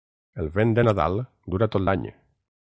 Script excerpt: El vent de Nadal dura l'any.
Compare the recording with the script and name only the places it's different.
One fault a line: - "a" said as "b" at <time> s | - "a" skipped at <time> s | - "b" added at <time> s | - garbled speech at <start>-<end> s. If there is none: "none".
- "tot" added at 1.8 s